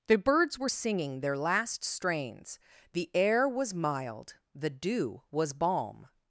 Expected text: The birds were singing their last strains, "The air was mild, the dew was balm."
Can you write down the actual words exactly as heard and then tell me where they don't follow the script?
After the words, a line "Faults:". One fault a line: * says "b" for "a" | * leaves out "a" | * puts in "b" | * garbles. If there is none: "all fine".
The birds were singing their last strains, "The air was mild, the dew was balm."
Faults:
all fine